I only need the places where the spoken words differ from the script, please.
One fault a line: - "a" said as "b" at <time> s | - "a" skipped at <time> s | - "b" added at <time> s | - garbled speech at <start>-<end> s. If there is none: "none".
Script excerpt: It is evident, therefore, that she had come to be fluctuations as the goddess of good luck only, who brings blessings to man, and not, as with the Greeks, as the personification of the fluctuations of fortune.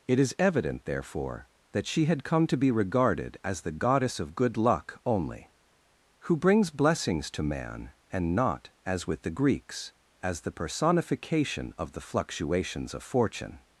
- "fluctuations" said as "regarded" at 2.7 s